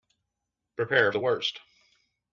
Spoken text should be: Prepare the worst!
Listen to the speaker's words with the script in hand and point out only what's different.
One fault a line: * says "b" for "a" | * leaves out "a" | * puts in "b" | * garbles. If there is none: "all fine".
all fine